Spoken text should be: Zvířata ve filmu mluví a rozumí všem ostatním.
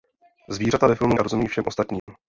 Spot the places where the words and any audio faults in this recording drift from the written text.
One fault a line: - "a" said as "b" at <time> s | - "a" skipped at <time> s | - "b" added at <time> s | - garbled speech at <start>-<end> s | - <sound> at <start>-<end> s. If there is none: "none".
- "mluví" skipped at 1.2 s
- dropout at 2.0-2.1 s